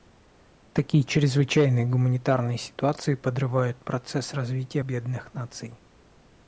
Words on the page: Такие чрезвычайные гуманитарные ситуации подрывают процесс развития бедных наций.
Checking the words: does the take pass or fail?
pass